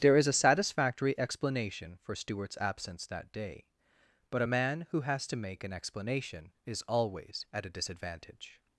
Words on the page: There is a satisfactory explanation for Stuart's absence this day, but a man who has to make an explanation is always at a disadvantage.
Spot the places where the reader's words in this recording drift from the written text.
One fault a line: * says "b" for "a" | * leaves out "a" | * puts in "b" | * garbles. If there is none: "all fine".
* says "that" for "this"